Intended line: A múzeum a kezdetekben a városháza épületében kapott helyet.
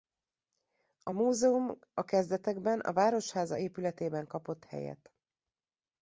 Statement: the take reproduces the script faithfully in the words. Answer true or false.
true